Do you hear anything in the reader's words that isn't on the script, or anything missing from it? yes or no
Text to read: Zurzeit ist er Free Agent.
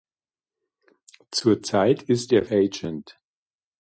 yes